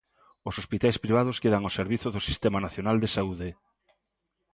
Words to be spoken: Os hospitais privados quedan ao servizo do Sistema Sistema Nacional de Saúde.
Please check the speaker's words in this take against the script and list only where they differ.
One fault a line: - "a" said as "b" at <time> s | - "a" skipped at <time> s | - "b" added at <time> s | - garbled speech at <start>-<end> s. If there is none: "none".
- "Sistema" skipped at 2.6 s